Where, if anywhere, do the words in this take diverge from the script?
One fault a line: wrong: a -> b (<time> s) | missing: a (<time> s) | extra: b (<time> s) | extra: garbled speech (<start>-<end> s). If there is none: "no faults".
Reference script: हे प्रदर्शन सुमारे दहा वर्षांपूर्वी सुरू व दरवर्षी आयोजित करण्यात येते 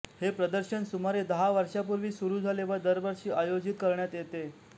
extra: झाले (2.4 s)